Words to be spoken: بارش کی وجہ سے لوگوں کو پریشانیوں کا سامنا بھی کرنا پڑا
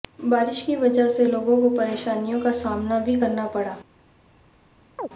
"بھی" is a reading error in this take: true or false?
false